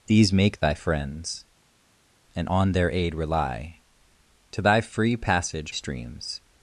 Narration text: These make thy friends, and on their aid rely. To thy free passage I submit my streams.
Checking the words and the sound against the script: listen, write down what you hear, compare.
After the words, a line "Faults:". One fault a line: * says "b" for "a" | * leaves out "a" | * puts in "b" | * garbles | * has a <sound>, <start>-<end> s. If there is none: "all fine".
These make thy friends, and on their aid rely. To thy free passage streams.
Faults:
* leaves out "I submit my"